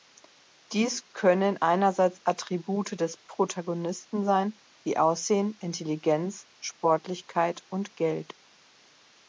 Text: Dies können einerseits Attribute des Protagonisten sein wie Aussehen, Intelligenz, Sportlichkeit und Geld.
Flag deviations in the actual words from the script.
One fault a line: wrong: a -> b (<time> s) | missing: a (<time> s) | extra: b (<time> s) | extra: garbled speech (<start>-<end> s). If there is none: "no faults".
no faults